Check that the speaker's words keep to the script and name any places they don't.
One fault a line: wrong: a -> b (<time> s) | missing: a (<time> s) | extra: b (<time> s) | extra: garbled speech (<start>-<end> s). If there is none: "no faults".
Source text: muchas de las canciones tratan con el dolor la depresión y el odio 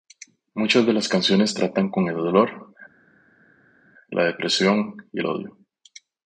no faults